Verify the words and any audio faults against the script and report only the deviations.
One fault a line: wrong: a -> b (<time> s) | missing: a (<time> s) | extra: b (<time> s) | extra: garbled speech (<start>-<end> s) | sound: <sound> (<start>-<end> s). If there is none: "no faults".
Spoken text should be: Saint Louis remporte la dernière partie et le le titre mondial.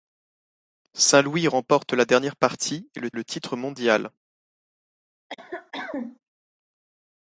sound: cough (5.3-6.2 s)